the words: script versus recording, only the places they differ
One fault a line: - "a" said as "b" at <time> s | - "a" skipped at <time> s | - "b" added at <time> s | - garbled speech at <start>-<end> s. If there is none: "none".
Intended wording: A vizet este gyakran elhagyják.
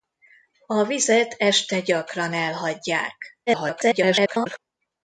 - garbled speech at 3.5-4.6 s